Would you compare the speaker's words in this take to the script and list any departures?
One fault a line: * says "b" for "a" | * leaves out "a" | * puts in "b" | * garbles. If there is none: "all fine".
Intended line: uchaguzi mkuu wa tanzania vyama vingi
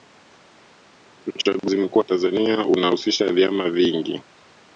* puts in "unahusisha"